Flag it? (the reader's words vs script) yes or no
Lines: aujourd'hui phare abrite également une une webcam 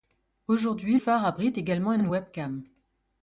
no